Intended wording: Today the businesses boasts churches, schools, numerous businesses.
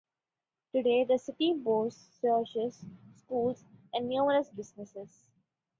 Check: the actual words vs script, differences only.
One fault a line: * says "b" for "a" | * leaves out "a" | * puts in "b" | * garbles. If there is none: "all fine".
* says "city" for "businesses"
* puts in "and"